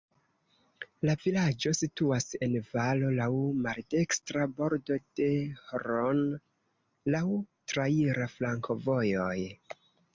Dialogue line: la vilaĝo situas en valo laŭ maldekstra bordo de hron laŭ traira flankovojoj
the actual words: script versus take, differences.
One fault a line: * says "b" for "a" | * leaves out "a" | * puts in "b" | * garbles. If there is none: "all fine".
all fine